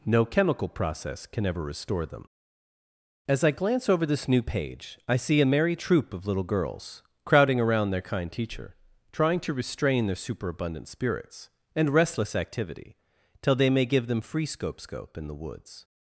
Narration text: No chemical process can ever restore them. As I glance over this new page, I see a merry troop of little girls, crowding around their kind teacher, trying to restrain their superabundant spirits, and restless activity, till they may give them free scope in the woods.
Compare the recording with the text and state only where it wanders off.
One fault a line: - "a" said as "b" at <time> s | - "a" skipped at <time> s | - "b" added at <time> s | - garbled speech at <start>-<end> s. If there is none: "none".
- "scope" added at 14.8 s